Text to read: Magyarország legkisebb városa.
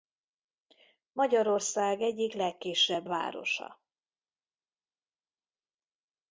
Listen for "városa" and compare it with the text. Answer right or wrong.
right